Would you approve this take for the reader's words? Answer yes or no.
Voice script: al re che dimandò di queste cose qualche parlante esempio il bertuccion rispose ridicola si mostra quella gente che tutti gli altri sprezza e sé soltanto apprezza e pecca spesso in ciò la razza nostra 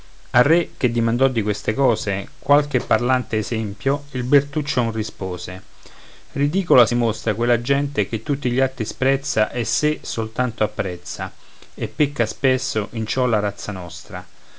yes